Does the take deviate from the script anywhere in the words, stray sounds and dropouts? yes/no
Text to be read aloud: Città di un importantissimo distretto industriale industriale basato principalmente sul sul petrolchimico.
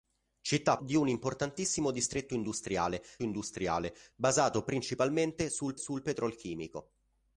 no